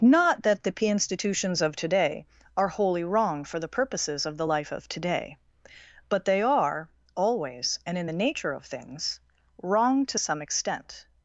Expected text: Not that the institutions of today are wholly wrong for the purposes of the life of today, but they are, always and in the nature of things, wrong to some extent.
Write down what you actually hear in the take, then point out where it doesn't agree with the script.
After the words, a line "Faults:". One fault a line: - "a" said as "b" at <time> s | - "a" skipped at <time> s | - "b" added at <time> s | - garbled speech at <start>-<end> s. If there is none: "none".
Not that the p institutions of today are wholly wrong for the purposes of the life of today, but they are, always and in the nature of things, wrong to some extent.
Faults:
- "p" added at 0.7 s